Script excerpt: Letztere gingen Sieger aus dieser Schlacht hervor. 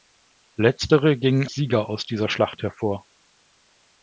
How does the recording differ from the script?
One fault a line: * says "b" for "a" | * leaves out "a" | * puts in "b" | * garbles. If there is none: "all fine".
all fine